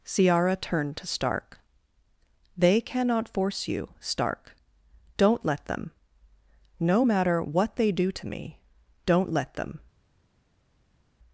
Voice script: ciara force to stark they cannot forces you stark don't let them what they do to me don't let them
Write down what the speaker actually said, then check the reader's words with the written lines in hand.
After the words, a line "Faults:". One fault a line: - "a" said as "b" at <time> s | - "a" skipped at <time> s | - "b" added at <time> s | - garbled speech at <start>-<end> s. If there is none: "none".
ciara turned to stark they cannot force you stark don't let them no matter what they do to me don't let them
Faults:
- "force" said as "turned" at 0.6 s
- "forces" said as "force" at 3.3 s
- "no matter" added at 6.8 s